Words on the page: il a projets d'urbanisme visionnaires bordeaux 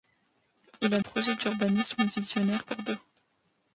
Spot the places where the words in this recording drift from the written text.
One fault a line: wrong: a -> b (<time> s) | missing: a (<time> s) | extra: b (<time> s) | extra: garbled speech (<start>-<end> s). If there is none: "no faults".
no faults